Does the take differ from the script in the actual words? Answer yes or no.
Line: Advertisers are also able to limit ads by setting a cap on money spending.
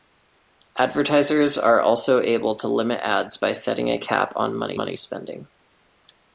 yes